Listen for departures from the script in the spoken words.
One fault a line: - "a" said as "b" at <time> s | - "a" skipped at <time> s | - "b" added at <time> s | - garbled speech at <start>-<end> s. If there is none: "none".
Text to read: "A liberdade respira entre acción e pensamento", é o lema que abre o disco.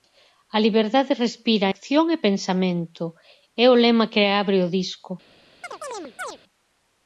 - "entre" skipped at 1.7 s